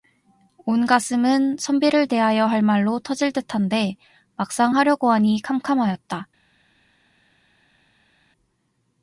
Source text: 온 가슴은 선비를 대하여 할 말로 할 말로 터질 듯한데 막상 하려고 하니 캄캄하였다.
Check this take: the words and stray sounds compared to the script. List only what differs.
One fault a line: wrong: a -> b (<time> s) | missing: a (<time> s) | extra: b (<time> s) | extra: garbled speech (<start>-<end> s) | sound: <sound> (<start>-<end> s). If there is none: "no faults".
missing: 할 말로 (3.0 s)